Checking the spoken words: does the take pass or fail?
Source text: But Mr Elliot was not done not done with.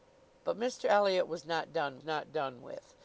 pass